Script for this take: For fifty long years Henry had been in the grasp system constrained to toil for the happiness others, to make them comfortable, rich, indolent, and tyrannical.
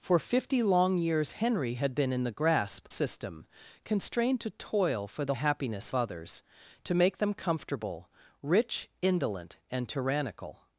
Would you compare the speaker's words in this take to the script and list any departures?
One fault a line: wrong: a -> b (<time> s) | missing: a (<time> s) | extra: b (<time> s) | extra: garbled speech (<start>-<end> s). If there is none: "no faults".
no faults